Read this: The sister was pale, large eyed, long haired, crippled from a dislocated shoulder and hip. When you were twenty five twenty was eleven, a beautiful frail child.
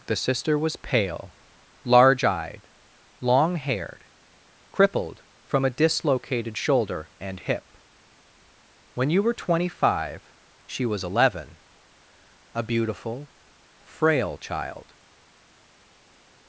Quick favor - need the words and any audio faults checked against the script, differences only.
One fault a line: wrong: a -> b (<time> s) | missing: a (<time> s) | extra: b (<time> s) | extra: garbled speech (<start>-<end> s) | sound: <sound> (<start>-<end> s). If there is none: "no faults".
wrong: twenty -> she (10.6 s)